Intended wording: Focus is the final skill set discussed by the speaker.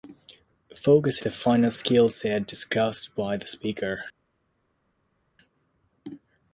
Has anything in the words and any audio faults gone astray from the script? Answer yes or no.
yes